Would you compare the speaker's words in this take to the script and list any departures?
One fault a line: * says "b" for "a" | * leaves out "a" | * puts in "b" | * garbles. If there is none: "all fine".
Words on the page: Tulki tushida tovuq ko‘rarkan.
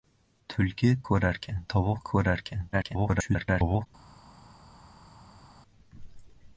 * says "ko‘rarkan" for "tushida"
* garbles